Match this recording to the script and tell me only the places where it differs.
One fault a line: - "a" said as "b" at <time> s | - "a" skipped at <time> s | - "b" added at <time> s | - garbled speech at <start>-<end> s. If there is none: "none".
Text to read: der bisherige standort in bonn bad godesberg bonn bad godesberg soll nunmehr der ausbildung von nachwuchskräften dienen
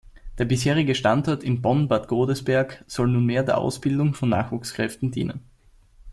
- "bonn bad godesberg" skipped at 2.8 s